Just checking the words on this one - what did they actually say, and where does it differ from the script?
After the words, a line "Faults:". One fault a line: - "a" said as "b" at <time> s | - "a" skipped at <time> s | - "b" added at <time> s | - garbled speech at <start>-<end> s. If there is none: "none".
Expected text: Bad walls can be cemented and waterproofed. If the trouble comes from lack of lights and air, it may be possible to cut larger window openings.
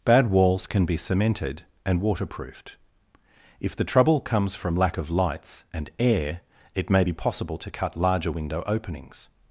Bad walls can be cemented and waterproofed. If the trouble comes from lack of lights and air, it may be possible to cut larger window openings.
Faults:
none